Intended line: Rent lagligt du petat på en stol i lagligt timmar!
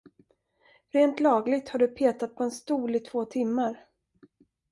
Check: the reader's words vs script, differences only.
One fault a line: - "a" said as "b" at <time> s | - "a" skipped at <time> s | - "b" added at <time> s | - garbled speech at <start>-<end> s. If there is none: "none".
- "har" added at 1.7 s
- "lagligt" said as "två" at 3.0 s